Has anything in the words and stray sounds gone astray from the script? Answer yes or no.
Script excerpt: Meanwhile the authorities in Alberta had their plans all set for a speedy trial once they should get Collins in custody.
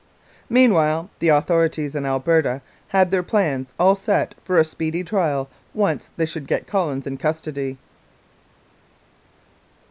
no